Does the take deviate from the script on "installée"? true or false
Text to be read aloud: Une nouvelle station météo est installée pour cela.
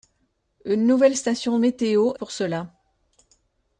true